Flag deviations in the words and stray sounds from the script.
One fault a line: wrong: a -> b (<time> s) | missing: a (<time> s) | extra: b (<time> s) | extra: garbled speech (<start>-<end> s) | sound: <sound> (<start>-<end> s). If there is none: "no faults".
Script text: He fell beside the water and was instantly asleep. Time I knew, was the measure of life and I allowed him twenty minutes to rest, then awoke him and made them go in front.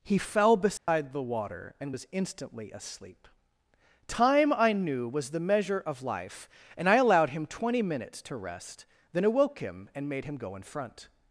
sound: dropout (0.8-0.9 s)
wrong: them -> him (10.2 s)